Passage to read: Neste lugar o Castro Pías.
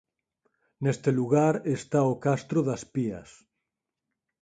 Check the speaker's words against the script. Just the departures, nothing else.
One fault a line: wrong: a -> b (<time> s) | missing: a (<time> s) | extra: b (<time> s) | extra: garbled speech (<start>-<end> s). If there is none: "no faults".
extra: está (1.8 s)
extra: das (2.7 s)